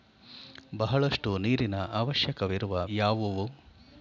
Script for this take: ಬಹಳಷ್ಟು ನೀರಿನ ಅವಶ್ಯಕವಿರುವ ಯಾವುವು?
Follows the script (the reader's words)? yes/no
yes